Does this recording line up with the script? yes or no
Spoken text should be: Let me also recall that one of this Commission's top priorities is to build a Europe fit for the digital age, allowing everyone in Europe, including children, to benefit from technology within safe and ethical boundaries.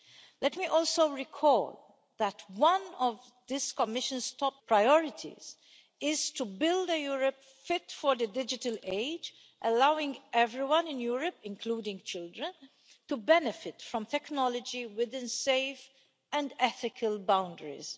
yes